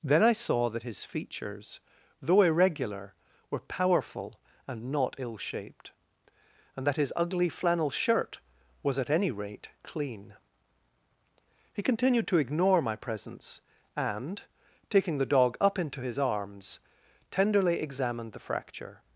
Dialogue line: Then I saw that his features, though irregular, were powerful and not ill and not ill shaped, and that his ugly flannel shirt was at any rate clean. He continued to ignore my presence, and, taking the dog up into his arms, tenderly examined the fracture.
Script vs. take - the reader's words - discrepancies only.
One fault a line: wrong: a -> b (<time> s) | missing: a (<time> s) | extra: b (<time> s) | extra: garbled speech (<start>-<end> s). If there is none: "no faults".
missing: and not ill (5.4 s)